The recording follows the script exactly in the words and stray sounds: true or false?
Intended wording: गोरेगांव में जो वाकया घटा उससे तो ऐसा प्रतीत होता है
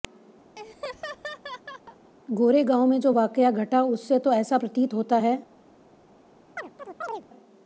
false